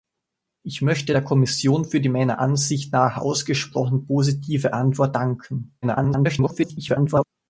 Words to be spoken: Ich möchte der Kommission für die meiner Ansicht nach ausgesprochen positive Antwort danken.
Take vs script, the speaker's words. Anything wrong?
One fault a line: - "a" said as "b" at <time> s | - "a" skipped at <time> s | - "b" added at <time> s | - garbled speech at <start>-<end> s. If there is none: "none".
- garbled speech at 5.8-7.2 s